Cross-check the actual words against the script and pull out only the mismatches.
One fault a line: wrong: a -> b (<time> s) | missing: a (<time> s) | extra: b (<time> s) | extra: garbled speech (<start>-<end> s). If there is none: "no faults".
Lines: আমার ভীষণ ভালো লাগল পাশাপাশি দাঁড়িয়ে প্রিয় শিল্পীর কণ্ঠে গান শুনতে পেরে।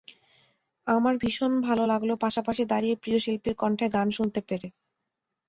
no faults